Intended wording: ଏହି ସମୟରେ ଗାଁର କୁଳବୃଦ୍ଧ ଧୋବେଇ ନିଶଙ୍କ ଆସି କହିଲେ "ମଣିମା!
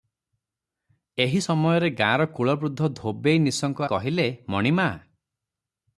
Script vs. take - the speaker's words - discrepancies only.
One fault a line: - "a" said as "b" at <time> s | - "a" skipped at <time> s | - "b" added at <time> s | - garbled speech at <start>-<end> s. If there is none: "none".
- "ଆସି" skipped at 3.9 s